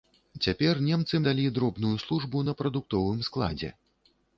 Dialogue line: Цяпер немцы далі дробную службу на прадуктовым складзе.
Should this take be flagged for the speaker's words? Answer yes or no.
no